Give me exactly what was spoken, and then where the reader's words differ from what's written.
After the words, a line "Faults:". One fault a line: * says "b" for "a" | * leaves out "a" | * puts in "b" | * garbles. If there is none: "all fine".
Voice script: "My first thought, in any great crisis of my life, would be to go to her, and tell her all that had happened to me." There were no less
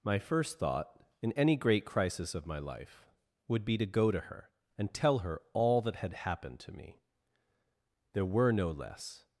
"My first thought, in any great crisis of my life, would be to go to her, and tell her all that had happened to me." There were no less
Faults:
all fine